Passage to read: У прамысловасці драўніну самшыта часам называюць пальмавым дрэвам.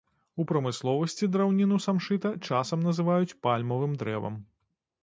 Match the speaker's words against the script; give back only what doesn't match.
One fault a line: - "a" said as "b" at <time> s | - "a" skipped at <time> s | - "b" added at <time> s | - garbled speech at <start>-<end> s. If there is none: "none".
none